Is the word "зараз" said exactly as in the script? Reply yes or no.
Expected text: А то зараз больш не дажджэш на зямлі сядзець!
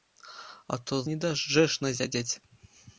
no